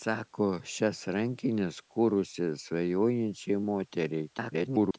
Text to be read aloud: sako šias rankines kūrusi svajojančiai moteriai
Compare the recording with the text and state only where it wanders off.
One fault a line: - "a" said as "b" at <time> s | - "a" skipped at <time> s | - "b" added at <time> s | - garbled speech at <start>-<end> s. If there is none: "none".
- garbled speech at 4.3-5.0 s